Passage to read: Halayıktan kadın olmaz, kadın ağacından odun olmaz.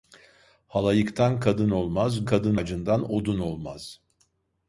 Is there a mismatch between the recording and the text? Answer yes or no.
no